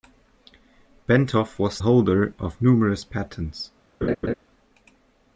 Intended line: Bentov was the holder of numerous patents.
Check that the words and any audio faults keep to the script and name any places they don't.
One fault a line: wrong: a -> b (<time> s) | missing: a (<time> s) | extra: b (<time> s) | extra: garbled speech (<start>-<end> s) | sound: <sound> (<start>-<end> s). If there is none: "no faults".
missing: the (1.8 s)
sound: laugh (4.0-4.3 s)